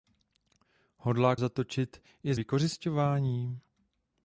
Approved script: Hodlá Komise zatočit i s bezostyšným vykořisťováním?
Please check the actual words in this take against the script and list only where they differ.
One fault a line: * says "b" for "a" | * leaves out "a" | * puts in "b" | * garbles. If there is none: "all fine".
* leaves out "Komise"
* leaves out "bezostyšným"